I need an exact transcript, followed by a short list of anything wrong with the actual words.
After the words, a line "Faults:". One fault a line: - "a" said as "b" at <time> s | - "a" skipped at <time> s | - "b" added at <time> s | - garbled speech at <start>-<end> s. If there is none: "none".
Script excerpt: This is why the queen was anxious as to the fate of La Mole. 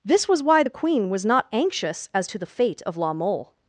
This was why the queen was not anxious as to the fate of La Mole.
Faults:
- "is" said as "was" at 0.3 s
- "not" added at 1.2 s